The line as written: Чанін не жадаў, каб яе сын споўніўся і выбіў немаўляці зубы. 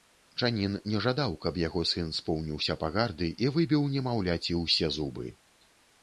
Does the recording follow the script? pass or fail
fail